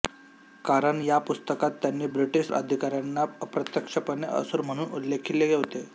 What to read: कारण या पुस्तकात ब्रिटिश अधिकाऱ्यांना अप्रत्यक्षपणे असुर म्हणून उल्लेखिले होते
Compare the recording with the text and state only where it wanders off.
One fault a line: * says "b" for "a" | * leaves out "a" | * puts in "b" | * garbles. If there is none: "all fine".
* puts in "त्यांनी"